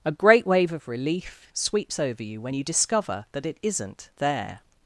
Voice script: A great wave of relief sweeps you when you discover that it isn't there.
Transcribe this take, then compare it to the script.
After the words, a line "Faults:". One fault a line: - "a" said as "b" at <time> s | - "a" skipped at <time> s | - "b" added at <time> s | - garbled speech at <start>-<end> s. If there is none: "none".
A great wave of relief sweeps over you when you discover that it isn't there.
Faults:
- "over" added at 2.0 s